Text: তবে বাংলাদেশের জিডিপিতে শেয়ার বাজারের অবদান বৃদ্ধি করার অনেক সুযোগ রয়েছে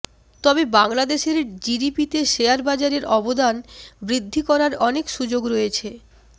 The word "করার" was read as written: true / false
true